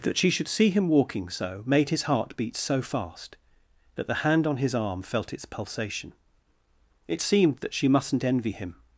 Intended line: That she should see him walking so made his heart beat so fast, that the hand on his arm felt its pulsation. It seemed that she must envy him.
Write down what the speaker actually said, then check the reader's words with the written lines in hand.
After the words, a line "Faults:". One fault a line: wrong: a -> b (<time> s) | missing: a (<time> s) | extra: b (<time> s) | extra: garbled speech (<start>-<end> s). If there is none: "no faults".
That she should see him walking so made his heart beat so fast, that the hand on his arm felt its pulsation. It seemed that she mustn't envy him.
Faults:
wrong: must -> mustn't (7.9 s)